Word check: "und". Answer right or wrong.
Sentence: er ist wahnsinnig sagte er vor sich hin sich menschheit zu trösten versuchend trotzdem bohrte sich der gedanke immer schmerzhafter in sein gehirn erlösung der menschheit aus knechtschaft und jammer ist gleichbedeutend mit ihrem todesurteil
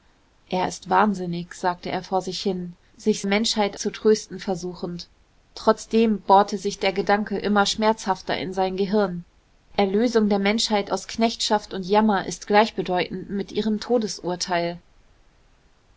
right